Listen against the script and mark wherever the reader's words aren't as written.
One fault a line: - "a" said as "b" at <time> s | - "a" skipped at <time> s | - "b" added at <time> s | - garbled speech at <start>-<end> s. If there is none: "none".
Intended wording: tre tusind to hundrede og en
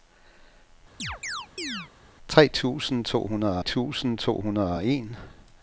- "tusind to hundrede" added at 3.6 s